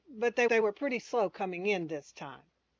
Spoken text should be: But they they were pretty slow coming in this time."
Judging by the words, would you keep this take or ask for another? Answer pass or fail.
pass